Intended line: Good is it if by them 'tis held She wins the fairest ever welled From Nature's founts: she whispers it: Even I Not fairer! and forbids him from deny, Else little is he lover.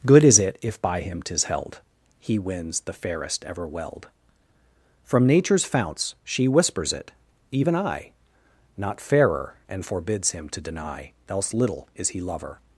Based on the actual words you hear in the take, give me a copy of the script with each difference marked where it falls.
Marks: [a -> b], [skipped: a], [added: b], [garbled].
Good is it if by [them -> him] 'tis held [She -> He] wins the fairest ever welled From Nature's founts: she whispers it: Even I Not fairer! and forbids him [from -> to] deny, Else little is he lover.